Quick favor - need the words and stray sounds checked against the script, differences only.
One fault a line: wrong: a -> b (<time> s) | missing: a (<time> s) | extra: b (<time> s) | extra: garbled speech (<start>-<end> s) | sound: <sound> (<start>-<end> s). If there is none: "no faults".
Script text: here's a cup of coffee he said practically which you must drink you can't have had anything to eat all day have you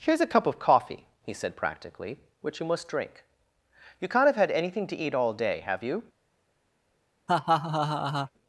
sound: laugh (7.3-8.3 s)